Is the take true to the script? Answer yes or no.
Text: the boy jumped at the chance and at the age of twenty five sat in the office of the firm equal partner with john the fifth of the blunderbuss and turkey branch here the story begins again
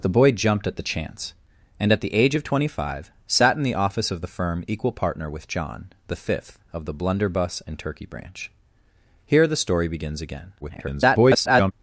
no